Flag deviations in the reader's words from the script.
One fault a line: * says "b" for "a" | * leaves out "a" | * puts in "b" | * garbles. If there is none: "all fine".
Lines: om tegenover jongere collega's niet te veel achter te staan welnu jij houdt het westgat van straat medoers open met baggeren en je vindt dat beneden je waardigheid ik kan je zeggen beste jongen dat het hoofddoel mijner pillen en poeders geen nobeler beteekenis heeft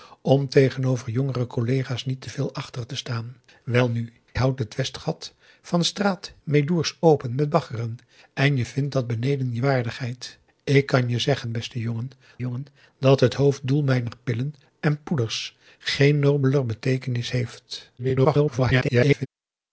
* leaves out "jij"
* puts in "jongen"
* garbles